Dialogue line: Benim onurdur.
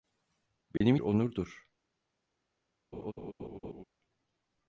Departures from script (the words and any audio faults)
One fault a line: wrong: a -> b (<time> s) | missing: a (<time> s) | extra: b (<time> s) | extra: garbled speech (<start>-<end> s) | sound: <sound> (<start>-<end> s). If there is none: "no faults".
sound: dropout (0.8-0.8 s)
sound: laugh (2.9-3.8 s)